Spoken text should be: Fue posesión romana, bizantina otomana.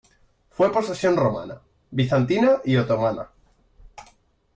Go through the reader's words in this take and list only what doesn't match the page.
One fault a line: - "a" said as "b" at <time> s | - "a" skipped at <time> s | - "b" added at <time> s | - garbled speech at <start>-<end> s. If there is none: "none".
- "y" added at 2.6 s